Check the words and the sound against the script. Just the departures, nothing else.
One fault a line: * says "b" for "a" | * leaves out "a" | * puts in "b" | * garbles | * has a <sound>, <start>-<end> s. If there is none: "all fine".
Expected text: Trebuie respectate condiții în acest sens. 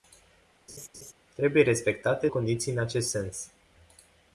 * has a laugh, 0.7-1.1 s